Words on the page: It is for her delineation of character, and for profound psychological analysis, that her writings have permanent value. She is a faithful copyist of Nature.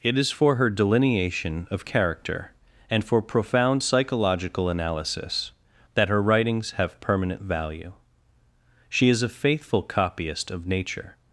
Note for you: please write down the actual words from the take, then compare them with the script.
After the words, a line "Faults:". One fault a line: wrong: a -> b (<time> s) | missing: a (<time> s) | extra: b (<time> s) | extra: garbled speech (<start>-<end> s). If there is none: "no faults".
It is for her delineation of character, and for profound psychological analysis, that her writings have permanent value. She is a faithful copyist of Nature.
Faults:
no faults